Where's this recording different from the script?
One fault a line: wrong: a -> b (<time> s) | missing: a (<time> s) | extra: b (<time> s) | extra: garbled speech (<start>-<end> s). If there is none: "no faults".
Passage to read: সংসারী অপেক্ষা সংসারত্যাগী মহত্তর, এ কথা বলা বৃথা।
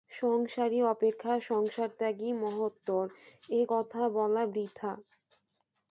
no faults